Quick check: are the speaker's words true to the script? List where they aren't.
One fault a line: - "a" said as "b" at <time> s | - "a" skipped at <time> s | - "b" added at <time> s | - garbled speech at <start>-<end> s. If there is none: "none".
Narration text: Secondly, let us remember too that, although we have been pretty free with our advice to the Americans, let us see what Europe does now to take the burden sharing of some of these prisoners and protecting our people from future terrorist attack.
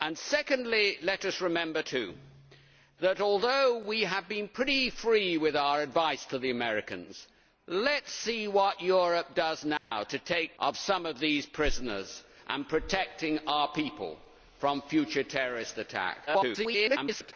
- "the burden sharing" skipped at 10.6 s
- garbled speech at 16.3-17.3 s